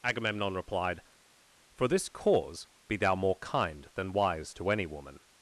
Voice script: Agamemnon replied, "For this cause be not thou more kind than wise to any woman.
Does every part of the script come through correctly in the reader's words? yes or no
no